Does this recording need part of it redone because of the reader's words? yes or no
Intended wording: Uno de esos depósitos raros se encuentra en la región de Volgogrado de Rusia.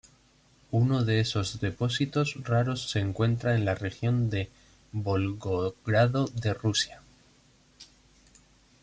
no